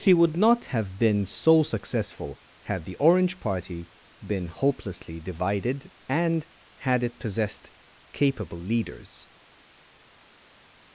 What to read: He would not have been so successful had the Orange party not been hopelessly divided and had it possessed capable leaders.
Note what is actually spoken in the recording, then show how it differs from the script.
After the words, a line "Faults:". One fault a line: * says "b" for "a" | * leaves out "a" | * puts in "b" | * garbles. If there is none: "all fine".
He would not have been so successful had the Orange party been hopelessly divided and had it possessed capable leaders.
Faults:
* leaves out "not"